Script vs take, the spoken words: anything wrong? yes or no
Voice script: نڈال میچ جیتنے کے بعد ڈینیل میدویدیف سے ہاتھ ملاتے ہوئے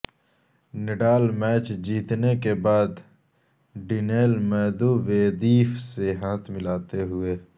no